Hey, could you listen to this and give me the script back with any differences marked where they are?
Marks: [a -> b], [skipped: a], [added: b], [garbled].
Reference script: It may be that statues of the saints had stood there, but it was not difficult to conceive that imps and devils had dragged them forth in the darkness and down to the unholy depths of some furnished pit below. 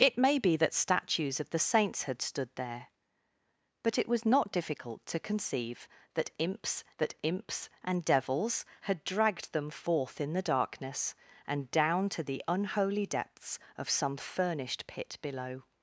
It may be that statues of the saints had stood there, but it was not difficult to conceive that imps [added: that imps] and devils had dragged them forth in the darkness and down to the unholy depths of some furnished pit below.